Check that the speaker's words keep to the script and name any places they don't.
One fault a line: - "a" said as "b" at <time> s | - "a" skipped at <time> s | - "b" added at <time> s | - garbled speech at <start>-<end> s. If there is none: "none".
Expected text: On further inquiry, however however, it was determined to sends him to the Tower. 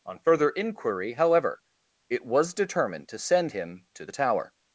- "however" skipped at 1.6 s
- "sends" said as "send" at 3.2 s